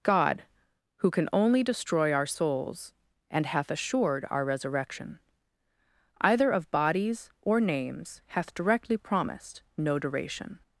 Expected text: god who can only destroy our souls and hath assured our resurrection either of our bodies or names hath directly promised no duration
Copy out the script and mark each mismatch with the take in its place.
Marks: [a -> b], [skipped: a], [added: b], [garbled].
god who can only destroy our souls and hath assured our resurrection either of [skipped: our] bodies or names hath directly promised no duration